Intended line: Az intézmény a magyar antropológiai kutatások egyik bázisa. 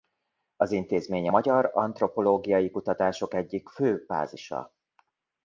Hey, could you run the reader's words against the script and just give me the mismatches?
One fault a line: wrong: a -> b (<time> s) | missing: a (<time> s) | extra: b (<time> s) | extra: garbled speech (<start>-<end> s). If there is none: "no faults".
extra: fő (3.7 s)